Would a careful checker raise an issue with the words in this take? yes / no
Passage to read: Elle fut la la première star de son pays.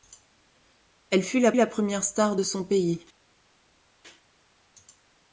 no